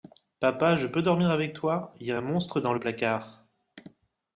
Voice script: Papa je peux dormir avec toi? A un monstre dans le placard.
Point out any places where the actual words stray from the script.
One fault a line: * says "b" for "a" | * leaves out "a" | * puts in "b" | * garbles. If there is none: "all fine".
* puts in "Y"